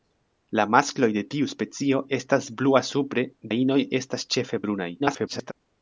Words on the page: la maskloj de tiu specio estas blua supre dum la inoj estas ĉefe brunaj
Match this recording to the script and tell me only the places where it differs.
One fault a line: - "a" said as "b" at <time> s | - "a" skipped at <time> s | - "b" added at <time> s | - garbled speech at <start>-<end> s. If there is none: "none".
- "dum" skipped at 3.3 s
- garbled speech at 5.0-5.5 s